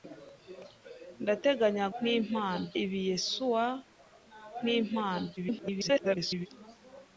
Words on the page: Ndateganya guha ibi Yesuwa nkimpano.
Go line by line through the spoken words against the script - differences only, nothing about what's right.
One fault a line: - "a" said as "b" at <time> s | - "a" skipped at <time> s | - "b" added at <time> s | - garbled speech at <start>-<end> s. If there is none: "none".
- "guha" said as "nkimpano" at 2.0 s
- garbled speech at 5.4-6.5 s